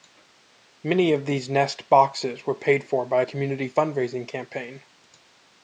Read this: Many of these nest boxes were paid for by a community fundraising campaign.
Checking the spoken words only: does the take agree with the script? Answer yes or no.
yes